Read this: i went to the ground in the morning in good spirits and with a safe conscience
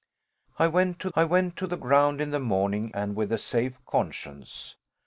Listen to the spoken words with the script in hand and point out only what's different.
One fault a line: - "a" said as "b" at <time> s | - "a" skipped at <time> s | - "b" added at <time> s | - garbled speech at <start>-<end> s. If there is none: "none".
- "i went to" added at 1.1 s
- "in good spirits" skipped at 2.9 s